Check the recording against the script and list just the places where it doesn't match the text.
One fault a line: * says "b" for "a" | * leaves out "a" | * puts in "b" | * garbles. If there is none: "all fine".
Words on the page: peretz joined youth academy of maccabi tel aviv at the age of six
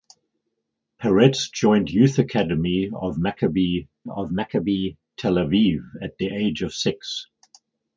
* puts in "of maccabi"